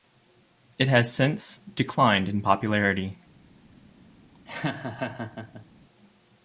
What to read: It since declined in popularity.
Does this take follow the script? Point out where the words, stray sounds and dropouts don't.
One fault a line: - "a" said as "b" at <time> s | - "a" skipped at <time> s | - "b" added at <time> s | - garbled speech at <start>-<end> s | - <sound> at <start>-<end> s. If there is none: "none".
- "has" added at 0.9 s
- laugh at 4.3-5.7 s